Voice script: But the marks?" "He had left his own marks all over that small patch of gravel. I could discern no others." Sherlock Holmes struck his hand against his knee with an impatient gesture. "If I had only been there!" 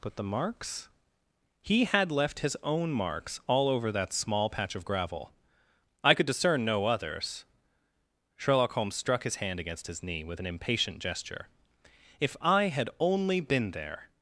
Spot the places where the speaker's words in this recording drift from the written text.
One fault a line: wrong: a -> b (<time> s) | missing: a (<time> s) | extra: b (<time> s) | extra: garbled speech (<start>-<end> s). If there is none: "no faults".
no faults